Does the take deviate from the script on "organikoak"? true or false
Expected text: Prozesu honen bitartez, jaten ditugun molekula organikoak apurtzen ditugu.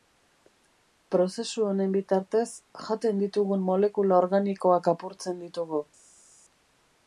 false